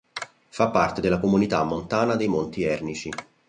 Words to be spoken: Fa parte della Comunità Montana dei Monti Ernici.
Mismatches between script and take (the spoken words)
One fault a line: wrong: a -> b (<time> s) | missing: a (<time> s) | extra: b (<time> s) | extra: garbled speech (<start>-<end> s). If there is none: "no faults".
no faults